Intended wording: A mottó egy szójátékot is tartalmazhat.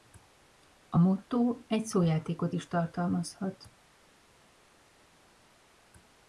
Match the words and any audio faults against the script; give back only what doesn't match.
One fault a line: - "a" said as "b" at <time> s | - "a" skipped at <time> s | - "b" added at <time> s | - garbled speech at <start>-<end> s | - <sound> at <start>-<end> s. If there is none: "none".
none